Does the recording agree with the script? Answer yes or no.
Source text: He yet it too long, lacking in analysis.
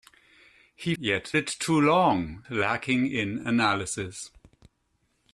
yes